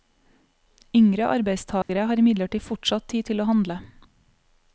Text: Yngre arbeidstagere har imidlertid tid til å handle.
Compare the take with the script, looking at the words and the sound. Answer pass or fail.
fail